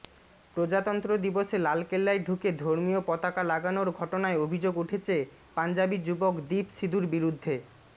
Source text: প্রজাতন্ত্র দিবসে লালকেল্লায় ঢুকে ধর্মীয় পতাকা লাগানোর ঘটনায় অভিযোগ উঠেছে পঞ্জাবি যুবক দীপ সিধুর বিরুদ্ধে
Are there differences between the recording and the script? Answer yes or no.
no